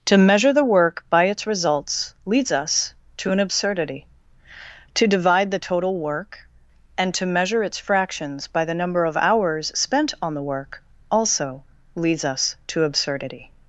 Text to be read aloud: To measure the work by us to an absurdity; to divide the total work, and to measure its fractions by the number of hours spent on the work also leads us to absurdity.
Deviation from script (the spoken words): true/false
true